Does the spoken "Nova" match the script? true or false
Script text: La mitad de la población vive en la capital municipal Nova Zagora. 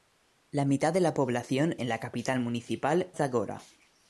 false